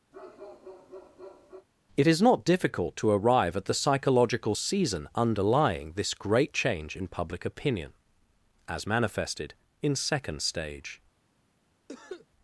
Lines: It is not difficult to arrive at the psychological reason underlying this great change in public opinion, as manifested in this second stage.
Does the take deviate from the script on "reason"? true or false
true